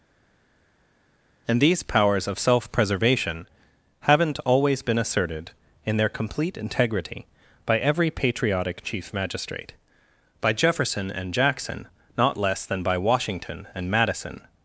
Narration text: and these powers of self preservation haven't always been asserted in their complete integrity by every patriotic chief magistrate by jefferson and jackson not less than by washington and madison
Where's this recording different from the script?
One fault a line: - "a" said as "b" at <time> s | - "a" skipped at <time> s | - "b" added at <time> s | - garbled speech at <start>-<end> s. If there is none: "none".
none